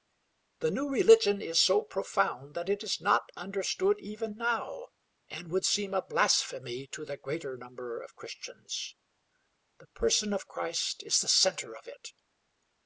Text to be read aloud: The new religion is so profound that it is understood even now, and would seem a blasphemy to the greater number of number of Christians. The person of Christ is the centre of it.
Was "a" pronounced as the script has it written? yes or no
yes